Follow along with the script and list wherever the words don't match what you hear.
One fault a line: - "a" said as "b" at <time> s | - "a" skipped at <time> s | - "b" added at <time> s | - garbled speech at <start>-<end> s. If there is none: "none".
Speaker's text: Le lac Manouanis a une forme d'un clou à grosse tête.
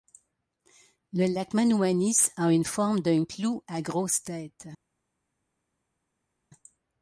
none